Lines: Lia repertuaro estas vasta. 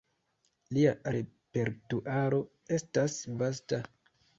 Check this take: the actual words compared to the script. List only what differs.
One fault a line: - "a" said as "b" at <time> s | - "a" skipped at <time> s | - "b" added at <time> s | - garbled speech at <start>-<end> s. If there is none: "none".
none